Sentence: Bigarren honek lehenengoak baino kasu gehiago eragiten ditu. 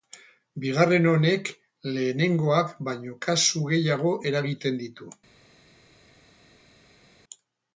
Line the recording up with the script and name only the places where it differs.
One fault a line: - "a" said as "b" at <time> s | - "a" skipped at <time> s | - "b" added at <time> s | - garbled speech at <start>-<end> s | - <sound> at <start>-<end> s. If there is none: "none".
none